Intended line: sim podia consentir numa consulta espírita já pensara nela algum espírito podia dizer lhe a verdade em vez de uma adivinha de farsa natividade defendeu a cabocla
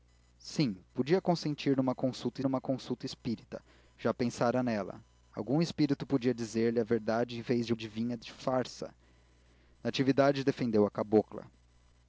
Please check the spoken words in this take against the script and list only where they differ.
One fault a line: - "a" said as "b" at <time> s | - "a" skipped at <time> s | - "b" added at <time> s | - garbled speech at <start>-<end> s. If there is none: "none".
- "numa consulta" added at 2.4 s
- "uma" skipped at 7.7 s